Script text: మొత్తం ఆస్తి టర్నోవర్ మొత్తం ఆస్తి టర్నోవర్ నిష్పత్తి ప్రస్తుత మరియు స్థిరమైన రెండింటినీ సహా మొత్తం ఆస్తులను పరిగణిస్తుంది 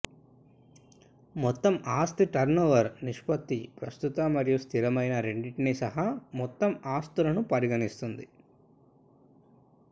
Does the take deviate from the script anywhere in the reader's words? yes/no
yes